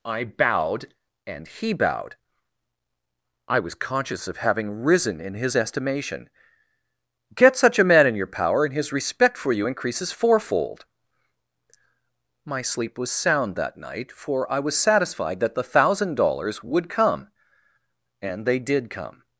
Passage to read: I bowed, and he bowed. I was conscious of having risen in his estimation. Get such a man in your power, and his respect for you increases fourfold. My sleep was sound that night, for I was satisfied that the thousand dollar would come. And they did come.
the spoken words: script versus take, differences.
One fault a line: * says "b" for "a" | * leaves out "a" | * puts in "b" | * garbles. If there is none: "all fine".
* says "dollars" for "dollar"